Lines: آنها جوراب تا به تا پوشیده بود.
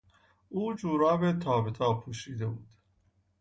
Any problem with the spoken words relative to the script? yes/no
yes